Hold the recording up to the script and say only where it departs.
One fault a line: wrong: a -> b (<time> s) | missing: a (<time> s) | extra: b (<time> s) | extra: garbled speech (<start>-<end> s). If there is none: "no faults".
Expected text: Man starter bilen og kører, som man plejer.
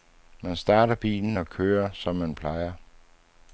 no faults